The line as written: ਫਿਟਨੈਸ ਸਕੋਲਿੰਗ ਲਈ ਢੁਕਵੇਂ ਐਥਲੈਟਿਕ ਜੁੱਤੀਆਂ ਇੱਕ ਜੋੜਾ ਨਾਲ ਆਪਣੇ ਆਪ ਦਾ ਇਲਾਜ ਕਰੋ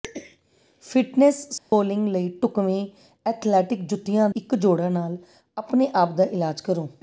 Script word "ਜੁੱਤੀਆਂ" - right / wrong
right